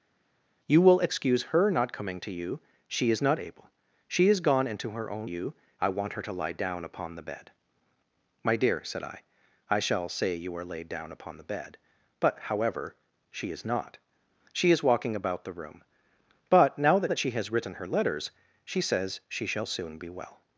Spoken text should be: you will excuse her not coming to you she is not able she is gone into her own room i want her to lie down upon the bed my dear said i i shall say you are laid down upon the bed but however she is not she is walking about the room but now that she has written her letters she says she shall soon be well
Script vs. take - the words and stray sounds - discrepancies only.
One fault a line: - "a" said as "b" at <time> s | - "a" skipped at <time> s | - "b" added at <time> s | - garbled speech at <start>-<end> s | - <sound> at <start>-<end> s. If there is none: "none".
- "room" said as "you" at 5.2 s
- "that" added at 17.1 s